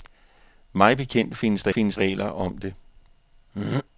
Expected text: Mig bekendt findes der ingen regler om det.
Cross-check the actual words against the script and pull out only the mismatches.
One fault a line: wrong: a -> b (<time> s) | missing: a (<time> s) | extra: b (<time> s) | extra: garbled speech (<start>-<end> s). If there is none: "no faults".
wrong: ingen -> findes (1.7 s)